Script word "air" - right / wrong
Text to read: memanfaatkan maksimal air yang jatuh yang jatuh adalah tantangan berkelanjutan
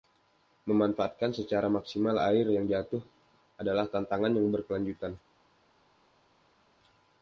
right